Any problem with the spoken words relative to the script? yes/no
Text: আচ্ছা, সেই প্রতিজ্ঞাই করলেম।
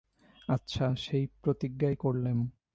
no